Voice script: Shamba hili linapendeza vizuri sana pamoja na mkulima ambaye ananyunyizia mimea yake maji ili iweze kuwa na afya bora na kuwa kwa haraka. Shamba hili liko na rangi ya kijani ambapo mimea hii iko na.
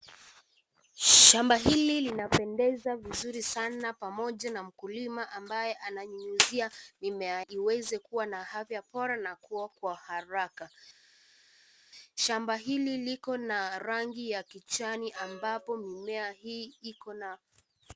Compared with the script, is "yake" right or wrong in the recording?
wrong